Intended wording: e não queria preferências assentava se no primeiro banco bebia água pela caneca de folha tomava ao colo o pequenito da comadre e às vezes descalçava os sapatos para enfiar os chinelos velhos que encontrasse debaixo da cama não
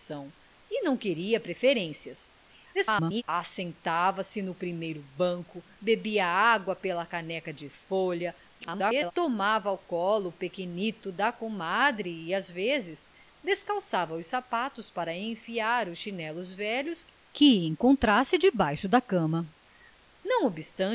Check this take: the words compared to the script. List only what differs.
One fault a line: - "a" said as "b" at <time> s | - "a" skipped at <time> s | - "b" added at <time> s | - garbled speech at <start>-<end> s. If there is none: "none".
- garbled speech at 2.7-3.2 s
- garbled speech at 8.6-9.1 s